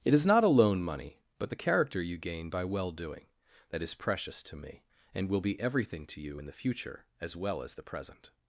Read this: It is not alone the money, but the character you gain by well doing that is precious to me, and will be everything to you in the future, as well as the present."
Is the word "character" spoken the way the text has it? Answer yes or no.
yes